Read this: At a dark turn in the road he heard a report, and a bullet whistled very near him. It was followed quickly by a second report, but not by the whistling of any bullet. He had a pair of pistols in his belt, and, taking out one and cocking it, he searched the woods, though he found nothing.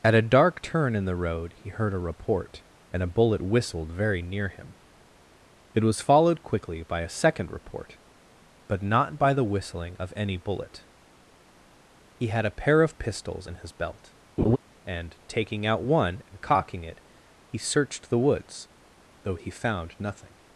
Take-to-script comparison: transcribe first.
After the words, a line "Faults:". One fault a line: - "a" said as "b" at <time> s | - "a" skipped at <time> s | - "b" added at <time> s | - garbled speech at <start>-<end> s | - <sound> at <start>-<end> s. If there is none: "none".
At a dark turn in the road he heard a report, and a bullet whistled very near him. It was followed quickly by a second report, but not by the whistling of any bullet. He had a pair of pistols in his belt, and, taking out one and cocking it, he searched the woods, though he found nothing.
Faults:
- laugh at 14.4-14.6 s